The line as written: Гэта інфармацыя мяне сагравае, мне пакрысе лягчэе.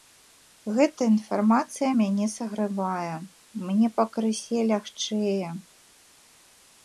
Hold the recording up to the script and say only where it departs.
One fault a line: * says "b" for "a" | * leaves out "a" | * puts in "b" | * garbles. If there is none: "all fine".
all fine